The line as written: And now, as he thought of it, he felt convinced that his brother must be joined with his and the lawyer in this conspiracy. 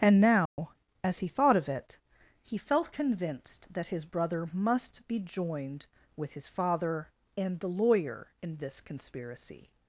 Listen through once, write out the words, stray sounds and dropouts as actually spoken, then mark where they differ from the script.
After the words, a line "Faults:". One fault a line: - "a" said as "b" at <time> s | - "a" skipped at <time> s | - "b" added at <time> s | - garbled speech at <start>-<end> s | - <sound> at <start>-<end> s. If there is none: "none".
And now, as he thought of it, he felt convinced that his brother must be joined with his father and the lawyer in this conspiracy.
Faults:
- dropout at 0.5-0.6 s
- "father" added at 6.5 s